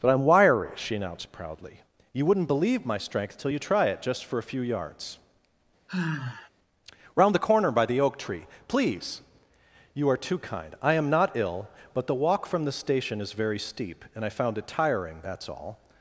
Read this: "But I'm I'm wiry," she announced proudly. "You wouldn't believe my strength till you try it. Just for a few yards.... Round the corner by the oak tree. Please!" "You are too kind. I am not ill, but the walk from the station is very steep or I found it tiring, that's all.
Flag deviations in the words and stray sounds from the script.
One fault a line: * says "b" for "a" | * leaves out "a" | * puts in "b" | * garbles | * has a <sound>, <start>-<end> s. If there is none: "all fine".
* leaves out "I'm"
* has a sigh, 5.9-6.5 s
* says "and" for "or"